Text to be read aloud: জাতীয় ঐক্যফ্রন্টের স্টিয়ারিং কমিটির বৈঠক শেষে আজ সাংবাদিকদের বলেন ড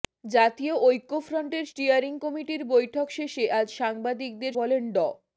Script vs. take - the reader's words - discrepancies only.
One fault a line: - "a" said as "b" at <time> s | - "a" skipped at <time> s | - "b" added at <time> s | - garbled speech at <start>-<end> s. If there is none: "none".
none